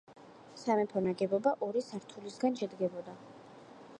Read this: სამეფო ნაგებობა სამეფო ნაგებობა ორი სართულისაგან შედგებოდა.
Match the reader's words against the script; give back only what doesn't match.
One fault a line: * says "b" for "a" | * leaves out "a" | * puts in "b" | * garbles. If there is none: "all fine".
* leaves out "სამეფო ნაგებობა"